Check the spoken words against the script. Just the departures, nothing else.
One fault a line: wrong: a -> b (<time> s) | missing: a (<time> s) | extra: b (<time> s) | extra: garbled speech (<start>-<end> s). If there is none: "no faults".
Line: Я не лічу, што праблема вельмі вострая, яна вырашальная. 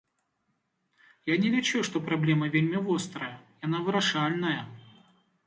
no faults